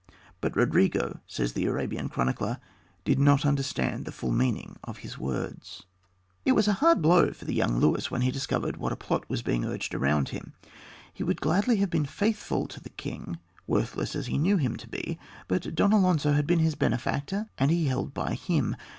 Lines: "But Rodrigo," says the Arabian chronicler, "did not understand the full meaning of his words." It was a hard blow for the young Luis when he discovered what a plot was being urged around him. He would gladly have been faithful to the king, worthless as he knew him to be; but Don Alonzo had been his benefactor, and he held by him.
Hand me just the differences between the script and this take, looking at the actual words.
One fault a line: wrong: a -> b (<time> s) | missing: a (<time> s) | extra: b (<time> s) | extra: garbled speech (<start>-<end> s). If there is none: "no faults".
no faults